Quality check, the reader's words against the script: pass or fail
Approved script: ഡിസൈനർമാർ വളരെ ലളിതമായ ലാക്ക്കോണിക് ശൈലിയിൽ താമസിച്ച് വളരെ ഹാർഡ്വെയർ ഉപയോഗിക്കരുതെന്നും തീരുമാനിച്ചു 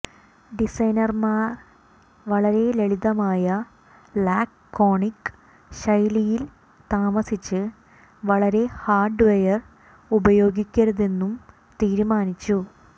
pass